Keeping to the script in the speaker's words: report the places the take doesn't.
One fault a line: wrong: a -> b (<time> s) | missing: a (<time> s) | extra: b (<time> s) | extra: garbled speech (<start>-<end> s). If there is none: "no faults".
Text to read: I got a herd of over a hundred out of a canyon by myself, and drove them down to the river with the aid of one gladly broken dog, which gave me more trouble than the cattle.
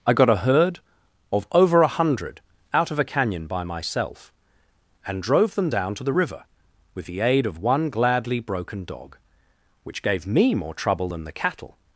no faults